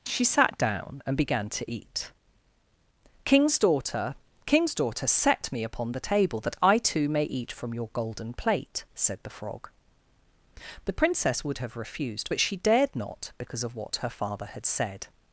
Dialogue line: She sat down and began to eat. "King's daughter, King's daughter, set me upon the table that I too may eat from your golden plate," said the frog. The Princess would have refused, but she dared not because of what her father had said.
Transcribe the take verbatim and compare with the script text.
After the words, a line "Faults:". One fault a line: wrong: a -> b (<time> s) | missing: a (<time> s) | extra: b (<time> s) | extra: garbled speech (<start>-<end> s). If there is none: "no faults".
She sat down and began to eat. "King's daughter, King's daughter, set me upon the table that I too may eat from your golden plate," said the frog. The Princess would have refused, but she dared not because of what her father had said.
Faults:
no faults